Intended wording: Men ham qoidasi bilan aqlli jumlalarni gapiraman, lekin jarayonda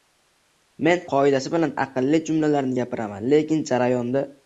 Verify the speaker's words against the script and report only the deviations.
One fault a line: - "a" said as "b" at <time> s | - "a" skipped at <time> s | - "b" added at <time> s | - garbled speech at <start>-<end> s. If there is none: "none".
- "ham" skipped at 1.0 s